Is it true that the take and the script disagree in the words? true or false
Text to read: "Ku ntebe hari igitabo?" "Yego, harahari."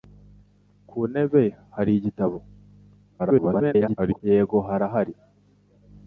true